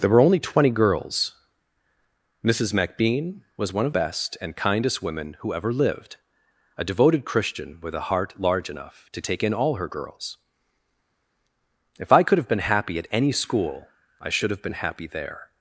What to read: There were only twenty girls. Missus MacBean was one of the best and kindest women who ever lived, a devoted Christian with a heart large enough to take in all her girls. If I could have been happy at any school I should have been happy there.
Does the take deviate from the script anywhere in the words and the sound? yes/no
yes